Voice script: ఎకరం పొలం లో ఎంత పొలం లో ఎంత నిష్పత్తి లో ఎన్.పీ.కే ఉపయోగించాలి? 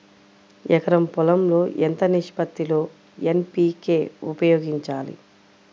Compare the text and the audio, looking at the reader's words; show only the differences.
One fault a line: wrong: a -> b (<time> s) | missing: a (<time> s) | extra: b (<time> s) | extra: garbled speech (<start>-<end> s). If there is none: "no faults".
missing: పొలం లో ఎంత (2.0 s)